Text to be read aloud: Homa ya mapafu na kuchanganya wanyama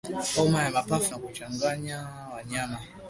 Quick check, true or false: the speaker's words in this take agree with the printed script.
true